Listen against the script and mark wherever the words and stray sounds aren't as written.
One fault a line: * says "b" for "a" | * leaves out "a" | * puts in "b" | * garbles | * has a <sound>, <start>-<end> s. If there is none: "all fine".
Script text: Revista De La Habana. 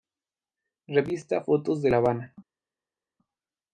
* puts in "Fotos"